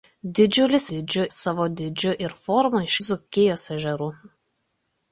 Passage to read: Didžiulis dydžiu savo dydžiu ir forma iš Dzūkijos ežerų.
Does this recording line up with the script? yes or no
yes